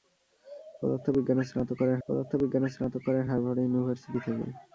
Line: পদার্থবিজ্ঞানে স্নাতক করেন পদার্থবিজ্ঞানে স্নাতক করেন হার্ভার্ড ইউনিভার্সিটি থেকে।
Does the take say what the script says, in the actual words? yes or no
yes